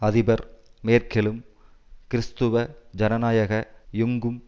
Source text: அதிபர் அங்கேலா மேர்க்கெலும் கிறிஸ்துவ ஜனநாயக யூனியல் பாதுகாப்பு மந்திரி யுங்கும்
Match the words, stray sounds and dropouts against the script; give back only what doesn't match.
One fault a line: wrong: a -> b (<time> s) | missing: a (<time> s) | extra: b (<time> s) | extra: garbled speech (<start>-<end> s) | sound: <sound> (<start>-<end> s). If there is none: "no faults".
missing: அங்கேலா (0.4 s)
missing: யூனியல் பாதுகாப்பு மந்திரி (3.5 s)